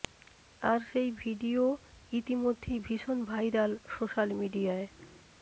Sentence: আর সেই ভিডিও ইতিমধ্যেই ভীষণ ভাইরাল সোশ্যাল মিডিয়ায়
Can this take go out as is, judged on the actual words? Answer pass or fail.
pass